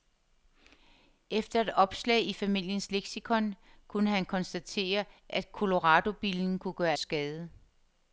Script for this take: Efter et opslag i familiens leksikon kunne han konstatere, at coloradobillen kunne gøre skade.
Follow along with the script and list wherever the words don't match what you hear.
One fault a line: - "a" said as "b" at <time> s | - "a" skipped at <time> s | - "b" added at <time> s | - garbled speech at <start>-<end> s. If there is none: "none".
none